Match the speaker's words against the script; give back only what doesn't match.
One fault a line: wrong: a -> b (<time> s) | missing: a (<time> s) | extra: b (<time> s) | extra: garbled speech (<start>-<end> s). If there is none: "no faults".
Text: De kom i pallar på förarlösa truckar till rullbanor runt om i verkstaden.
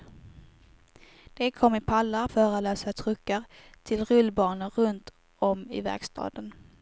missing: på (2.3 s)